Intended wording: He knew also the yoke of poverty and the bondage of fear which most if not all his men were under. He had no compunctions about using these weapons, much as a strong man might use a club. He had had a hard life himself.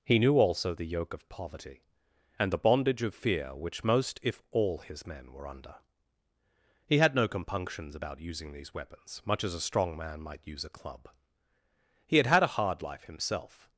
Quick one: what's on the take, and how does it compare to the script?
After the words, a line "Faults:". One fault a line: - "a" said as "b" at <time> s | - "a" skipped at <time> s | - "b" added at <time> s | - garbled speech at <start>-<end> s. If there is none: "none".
He knew also the yoke of poverty and the bondage of fear which most if all his men were under. He had no compunctions about using these weapons, much as a strong man might use a club. He had had a hard life himself.
Faults:
- "not" skipped at 4.4 s